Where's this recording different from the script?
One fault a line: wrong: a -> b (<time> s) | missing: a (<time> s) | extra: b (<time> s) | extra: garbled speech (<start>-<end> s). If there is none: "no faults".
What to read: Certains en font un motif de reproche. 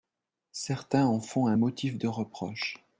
no faults